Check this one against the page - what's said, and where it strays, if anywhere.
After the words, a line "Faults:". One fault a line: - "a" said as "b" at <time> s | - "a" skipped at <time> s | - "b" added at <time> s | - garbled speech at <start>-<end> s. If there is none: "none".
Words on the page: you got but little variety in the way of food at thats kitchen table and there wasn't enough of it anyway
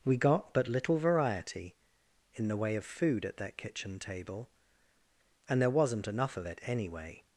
we got but little variety in the way of food at that kitchen table and there wasn't enough of it anyway
Faults:
- "you" said as "we" at 0.0 s
- "thats" said as "that" at 3.4 s